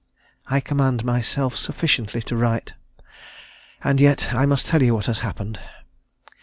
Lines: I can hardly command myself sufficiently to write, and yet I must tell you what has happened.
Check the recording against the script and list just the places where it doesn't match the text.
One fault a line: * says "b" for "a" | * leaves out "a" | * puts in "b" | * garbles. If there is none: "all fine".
* leaves out "can hardly"